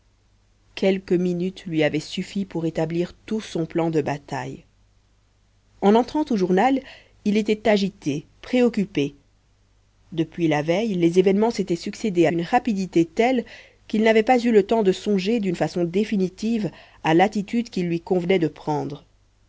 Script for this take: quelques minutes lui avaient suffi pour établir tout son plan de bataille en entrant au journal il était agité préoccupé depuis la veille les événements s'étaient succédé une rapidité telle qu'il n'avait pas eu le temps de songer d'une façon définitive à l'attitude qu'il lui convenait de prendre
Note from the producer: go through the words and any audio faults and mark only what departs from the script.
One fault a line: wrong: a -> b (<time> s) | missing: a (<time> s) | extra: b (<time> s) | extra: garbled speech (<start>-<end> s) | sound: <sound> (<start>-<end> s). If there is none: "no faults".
no faults